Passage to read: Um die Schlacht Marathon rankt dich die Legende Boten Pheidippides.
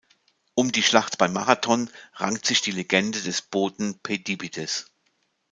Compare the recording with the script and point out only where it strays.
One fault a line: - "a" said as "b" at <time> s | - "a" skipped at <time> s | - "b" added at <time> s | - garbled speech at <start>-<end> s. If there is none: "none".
- "bei" added at 1.2 s
- "dich" said as "sich" at 2.5 s
- "des" added at 3.2 s